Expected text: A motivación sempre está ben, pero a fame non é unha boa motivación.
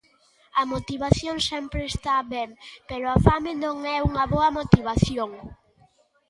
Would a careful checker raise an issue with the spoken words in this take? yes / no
no